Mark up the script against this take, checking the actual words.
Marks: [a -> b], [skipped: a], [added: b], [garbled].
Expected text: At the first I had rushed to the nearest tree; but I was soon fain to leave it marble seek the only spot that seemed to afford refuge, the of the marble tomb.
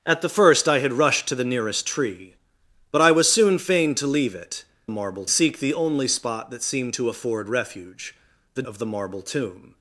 At the first I had rushed to the nearest tree; but I was soon fain to leave it marble seek the only spot that seemed to afford refuge, the of the marble tomb.